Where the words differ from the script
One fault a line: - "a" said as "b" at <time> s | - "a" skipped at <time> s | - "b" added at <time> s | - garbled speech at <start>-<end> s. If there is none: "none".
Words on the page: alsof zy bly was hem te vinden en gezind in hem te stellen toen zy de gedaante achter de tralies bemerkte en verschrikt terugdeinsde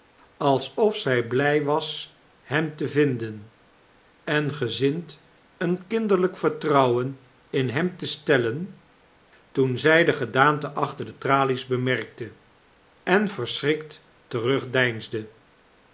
- "een kinderlyk vertrouwen" added at 5.6 s